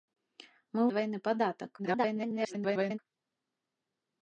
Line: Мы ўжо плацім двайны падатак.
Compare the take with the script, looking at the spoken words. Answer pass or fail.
fail